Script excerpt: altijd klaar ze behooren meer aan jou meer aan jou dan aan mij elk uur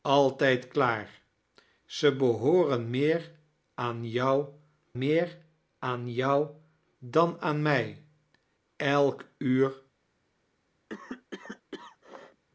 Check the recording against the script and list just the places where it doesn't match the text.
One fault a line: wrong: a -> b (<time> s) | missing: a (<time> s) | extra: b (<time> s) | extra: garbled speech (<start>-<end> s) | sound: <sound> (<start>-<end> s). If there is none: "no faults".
sound: cough (10.9-12.4 s)